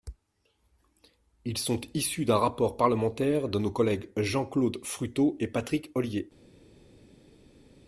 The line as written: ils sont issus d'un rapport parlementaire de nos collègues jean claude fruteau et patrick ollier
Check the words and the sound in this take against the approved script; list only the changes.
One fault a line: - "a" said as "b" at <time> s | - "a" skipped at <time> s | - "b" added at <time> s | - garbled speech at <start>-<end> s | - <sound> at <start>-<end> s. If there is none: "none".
none